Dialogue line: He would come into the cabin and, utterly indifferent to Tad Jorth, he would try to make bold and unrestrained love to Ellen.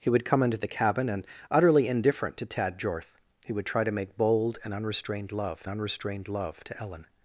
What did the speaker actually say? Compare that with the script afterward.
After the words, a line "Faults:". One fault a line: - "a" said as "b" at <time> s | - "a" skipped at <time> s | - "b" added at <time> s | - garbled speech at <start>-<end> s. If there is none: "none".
He would come into the cabin and, utterly indifferent to Tad Jorth, he would try to make bold and unrestrained love unrestrained love to Ellen.
Faults:
- "unrestrained love" added at 5.7 s